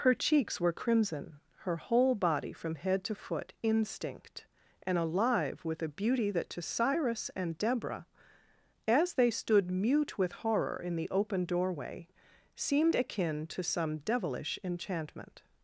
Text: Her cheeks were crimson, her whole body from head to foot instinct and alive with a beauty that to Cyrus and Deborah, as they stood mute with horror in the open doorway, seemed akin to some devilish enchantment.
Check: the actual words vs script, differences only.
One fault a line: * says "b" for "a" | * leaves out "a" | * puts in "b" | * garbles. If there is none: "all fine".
all fine